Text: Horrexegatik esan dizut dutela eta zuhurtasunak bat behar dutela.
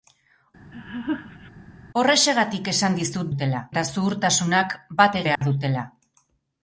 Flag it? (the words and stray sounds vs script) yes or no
yes